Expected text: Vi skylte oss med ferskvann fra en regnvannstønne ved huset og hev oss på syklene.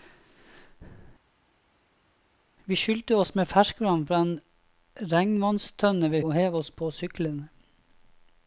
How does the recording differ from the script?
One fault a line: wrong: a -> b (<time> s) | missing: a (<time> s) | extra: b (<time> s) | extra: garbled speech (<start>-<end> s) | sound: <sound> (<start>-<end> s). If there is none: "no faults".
missing: huset (6.2 s)